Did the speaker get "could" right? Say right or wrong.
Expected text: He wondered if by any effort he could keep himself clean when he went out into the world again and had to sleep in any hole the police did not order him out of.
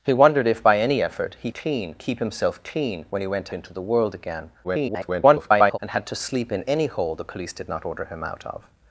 wrong